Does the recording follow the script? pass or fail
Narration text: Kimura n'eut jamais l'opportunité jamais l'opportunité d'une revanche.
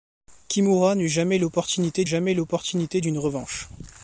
pass